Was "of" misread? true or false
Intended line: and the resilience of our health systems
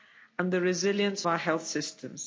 true